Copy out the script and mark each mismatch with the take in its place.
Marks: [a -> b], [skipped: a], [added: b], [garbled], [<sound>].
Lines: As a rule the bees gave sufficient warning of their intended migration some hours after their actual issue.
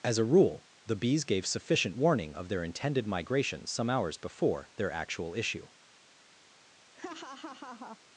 As a rule the bees gave sufficient warning of their intended migration some hours [after -> before] their actual issue. [laugh]